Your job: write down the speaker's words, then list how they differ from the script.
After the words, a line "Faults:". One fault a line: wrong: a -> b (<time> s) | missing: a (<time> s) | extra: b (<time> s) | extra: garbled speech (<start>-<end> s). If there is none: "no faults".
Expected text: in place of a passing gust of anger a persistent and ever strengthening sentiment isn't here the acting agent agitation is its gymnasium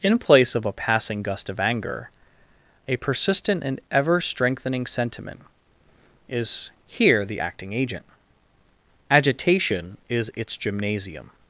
in place of a passing gust of anger a persistent and ever strengthening sentiment is here the acting agent agitation is its gymnasium
Faults:
wrong: isn't -> is (6.3 s)